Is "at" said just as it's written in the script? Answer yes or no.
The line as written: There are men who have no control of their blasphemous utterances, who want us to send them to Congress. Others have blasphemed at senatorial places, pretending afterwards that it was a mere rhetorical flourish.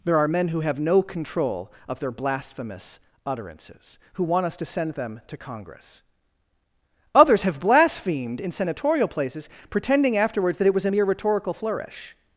no